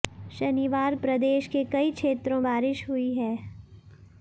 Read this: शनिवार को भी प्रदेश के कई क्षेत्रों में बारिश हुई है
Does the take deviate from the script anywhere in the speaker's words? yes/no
yes